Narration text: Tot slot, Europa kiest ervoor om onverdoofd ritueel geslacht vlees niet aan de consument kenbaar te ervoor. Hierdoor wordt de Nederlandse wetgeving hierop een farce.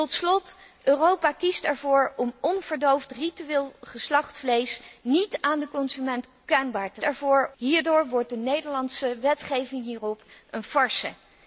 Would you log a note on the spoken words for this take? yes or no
no